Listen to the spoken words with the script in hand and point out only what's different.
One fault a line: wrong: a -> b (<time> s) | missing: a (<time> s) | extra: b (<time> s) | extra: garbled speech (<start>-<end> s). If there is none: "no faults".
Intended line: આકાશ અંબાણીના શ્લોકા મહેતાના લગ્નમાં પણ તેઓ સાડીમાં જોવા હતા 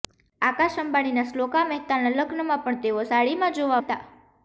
no faults